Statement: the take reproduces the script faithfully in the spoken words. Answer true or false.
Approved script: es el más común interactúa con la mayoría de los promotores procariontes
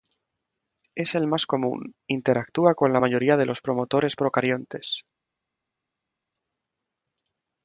true